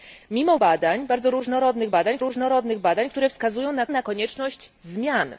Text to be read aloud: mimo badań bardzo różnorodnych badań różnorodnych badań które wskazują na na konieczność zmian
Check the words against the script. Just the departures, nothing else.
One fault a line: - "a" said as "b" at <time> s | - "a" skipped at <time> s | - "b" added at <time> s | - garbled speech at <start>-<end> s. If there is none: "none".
none